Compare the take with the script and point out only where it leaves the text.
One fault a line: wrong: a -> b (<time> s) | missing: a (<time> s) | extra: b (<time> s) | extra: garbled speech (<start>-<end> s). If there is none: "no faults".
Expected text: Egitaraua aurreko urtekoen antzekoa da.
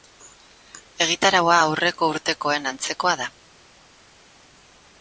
no faults